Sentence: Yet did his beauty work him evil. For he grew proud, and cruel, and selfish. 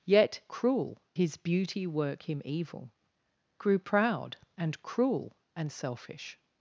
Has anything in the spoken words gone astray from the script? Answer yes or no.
yes